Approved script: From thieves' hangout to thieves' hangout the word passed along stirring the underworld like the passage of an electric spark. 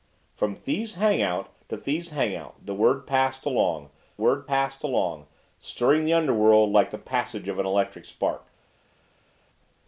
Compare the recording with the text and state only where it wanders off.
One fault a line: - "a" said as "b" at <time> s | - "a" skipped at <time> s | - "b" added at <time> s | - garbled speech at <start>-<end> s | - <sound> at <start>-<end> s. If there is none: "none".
- "word passed along" added at 4.2 s